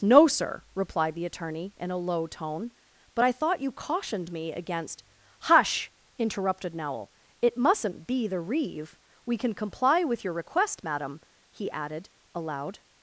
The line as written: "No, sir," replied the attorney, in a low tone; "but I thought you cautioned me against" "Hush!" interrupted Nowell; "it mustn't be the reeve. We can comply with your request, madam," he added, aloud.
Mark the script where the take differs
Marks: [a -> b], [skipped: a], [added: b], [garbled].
"No, sir," replied the attorney, in a low tone; "but I thought you cautioned me against" "Hush!" interrupted Nowell; "it mustn't be the reeve. We can comply with your request, madam," he added, aloud.